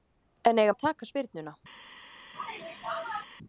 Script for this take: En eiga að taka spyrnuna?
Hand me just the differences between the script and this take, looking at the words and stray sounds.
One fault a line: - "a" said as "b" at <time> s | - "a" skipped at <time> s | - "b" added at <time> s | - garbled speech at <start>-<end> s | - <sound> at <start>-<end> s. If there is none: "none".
- sneeze at 2.3-3.2 s